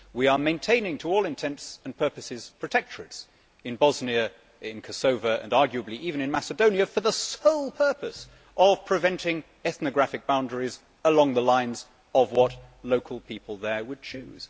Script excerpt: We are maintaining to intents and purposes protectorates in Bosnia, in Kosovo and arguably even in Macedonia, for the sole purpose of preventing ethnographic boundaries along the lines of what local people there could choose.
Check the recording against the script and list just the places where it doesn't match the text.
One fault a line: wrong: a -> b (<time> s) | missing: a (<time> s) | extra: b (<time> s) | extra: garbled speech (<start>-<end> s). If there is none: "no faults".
extra: all (1.1 s)
wrong: could -> would (13.8 s)